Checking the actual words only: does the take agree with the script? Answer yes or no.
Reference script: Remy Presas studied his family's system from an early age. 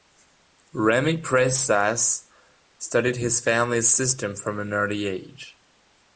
yes